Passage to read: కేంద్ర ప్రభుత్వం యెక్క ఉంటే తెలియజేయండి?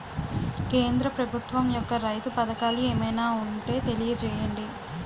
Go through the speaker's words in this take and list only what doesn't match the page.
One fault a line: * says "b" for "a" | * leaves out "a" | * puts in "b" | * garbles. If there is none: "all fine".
* puts in "రైతు పథకాలు ఏమైనా"